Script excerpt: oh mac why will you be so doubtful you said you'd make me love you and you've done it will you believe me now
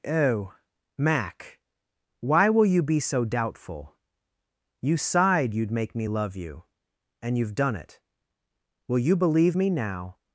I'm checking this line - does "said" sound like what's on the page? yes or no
no